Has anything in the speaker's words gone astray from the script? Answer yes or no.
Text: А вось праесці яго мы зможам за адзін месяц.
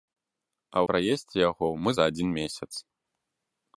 yes